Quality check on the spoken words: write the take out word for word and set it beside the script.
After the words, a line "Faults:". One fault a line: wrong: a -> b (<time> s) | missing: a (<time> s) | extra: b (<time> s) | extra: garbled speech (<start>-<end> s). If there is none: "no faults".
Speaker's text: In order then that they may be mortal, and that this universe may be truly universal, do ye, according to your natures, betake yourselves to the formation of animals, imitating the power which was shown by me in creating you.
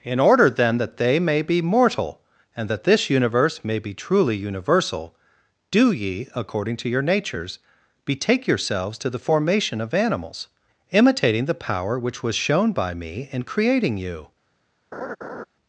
In order then that they may be mortal, and that this universe may be truly universal, do ye, according to your natures, betake yourselves to the formation of animals, imitating the power which was shown by me in creating you.
Faults:
no faults